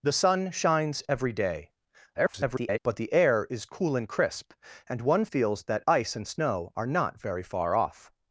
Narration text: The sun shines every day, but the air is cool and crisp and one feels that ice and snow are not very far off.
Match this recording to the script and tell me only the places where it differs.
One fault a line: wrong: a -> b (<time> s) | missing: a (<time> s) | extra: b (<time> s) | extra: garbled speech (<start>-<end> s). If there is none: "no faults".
extra: garbled speech (2.1-2.8 s)